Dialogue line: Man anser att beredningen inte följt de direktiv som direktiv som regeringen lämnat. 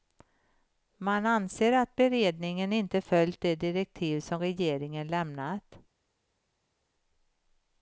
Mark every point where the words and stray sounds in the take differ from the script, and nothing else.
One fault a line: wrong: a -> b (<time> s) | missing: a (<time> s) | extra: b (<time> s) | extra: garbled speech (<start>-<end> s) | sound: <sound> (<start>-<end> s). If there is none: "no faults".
missing: direktiv som (4.4 s)